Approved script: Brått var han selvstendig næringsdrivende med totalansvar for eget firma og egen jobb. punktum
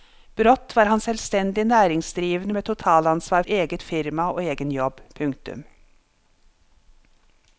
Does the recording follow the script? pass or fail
fail